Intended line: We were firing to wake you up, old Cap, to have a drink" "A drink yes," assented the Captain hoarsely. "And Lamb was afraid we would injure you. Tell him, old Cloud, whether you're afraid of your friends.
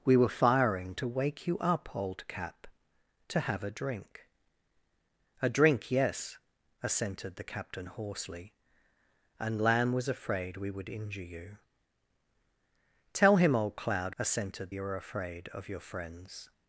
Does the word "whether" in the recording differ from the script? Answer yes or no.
yes